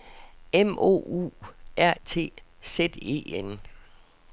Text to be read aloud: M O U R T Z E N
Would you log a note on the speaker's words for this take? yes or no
no